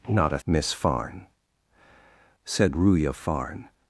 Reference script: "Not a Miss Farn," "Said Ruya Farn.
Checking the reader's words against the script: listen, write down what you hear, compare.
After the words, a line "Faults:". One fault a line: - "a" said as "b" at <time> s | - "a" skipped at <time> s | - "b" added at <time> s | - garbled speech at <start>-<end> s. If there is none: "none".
"Not a Miss Farn," "Said Ruya Farn.
Faults:
none